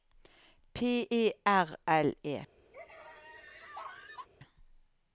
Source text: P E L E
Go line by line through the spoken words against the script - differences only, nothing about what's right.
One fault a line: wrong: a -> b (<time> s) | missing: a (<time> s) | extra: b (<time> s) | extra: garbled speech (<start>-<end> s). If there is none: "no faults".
extra: R (1.4 s)